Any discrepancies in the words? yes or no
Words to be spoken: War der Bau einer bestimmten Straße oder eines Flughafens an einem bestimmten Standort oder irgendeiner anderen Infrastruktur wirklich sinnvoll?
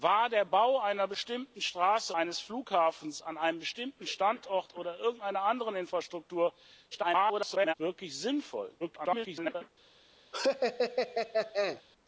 yes